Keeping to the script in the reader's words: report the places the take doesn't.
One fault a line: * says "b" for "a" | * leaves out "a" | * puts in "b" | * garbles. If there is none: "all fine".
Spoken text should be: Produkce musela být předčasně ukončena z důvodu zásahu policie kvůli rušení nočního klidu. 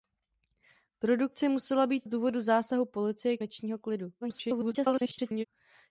* leaves out "předčasně ukončena"
* leaves out "kvůli rušení"
* garbles